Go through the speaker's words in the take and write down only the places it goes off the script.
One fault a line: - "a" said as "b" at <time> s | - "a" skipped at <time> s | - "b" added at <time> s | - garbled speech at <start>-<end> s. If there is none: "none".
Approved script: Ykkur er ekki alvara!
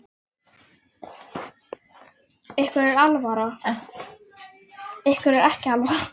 none